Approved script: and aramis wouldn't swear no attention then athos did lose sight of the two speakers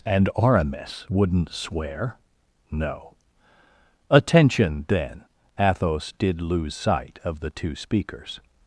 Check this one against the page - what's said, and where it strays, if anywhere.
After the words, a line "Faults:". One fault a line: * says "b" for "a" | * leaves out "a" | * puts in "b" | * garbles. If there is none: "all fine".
and aramis wouldn't swear no attention then athos did lose sight of the two speakers
Faults:
all fine